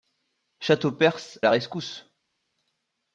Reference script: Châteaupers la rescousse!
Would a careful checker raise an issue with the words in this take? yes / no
no